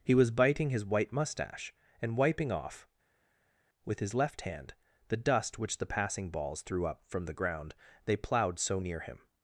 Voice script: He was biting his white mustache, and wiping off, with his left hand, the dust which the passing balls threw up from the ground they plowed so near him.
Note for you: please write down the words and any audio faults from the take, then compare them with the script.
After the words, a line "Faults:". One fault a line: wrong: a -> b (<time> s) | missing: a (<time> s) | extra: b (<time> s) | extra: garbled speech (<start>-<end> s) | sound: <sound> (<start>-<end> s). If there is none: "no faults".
He was biting his white mustache, and wiping off, with his left hand, the dust which the passing balls threw up from the ground they plowed so near him.
Faults:
no faults